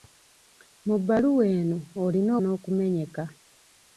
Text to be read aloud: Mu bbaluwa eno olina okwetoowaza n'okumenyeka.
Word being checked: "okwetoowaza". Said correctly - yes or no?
no